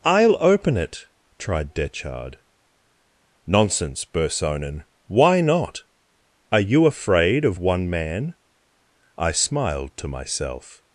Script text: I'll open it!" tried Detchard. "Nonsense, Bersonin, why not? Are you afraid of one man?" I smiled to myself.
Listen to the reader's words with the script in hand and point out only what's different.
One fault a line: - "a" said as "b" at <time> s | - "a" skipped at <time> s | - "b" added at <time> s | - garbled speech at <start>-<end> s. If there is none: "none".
none